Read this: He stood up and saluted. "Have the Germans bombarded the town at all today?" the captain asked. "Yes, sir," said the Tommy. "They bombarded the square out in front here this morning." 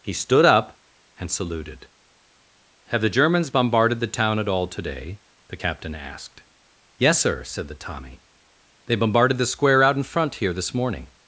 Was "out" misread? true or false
false